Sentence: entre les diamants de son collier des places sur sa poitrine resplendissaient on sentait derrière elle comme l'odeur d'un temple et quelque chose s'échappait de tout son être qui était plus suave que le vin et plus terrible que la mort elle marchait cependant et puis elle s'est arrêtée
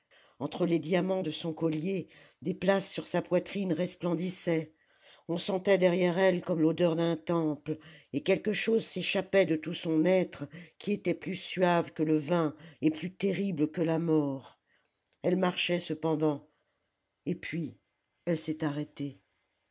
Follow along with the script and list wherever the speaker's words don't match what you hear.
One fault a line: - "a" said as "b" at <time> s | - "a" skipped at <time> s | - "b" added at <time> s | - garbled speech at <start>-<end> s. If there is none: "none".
none